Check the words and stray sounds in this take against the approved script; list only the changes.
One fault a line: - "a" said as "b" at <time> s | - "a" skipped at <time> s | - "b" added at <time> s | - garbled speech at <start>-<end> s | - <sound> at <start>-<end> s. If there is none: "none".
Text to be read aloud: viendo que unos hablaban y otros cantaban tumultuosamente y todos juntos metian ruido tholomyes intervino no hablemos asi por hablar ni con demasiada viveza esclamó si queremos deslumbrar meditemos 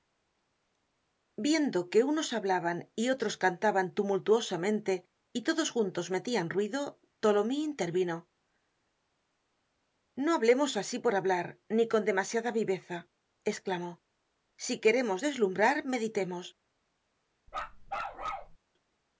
- bark at 17.5-18.6 s